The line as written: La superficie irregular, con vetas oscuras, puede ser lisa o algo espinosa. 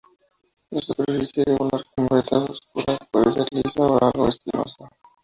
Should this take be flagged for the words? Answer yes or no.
no